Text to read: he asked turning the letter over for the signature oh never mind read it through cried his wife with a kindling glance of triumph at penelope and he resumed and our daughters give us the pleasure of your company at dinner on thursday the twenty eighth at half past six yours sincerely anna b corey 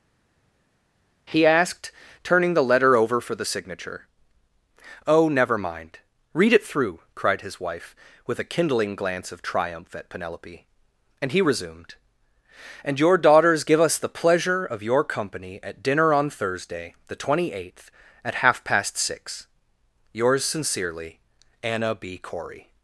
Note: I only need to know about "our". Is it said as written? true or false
false